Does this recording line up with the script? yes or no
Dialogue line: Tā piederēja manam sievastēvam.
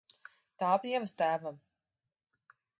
no